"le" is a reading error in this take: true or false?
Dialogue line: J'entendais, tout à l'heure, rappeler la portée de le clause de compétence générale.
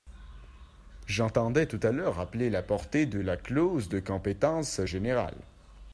true